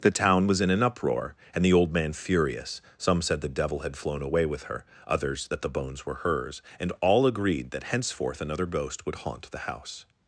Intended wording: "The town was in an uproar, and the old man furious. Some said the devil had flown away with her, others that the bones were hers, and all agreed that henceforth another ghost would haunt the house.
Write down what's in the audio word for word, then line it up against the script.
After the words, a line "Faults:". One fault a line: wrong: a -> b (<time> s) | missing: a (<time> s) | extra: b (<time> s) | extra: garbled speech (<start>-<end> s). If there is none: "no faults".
"The town was in an uproar, and the old man furious. Some said the devil had flown away with her, others that the bones were hers, and all agreed that henceforth another ghost would haunt the house.
Faults:
no faults